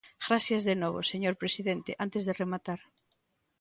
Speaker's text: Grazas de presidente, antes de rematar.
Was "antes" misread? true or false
false